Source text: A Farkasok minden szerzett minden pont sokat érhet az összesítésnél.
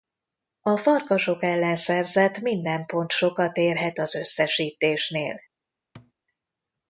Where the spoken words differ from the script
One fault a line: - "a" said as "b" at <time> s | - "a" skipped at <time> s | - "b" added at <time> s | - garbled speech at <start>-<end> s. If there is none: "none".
- "minden" said as "ellen" at 1.4 s